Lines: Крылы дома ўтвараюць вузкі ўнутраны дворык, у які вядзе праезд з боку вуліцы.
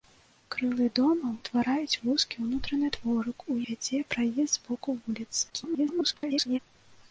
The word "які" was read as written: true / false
false